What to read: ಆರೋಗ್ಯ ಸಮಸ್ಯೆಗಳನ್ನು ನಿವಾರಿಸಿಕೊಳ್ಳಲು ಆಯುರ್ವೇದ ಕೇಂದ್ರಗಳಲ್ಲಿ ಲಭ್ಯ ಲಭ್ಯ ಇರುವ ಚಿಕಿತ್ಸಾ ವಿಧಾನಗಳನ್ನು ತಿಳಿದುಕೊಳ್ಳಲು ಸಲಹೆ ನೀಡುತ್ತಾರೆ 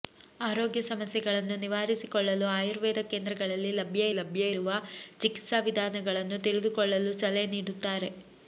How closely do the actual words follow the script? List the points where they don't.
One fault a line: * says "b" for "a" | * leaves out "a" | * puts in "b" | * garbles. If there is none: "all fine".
all fine